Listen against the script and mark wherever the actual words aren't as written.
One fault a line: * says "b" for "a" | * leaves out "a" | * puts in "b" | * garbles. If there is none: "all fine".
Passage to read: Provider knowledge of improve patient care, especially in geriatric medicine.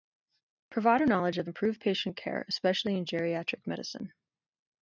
all fine